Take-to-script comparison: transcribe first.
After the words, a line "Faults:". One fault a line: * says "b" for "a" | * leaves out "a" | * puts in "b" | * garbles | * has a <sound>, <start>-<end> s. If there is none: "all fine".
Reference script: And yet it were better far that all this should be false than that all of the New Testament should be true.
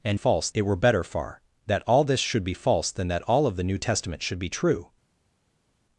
And false it were better far that all this should be false than that all of the New Testament should be true.
Faults:
* says "false" for "yet"